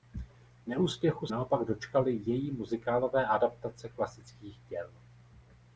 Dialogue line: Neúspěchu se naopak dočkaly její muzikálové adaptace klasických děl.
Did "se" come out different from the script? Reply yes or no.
yes